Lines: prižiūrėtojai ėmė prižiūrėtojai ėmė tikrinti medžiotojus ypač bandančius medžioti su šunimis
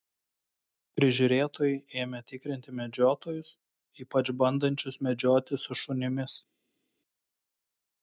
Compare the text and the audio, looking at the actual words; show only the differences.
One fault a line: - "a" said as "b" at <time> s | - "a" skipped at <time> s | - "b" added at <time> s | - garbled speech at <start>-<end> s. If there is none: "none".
- "prižiūrėtojai ėmė" skipped at 2.2 s